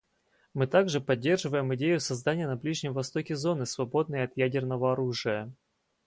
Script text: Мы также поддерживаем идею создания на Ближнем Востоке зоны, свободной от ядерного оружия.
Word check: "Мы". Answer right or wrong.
right